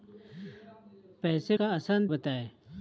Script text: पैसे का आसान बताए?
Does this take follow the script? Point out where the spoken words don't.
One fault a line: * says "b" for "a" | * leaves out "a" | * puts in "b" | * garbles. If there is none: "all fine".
all fine